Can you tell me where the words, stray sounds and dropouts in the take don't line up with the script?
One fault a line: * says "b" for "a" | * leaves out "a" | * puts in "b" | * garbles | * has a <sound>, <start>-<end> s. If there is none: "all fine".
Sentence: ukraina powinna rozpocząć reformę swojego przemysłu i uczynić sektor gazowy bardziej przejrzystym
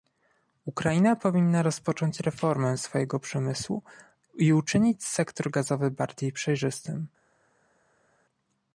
all fine